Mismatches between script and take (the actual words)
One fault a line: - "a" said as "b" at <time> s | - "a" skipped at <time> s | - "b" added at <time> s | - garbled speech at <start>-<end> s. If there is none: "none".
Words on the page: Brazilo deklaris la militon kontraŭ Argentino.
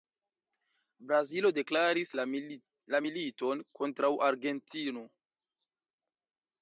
none